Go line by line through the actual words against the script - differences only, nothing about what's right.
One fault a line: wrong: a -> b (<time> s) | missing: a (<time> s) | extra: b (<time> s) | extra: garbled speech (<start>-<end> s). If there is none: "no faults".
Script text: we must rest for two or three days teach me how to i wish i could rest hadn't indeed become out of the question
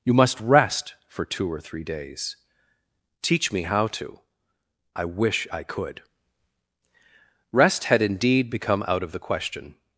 wrong: we -> you (0.0 s)
wrong: hadn't -> had (7.8 s)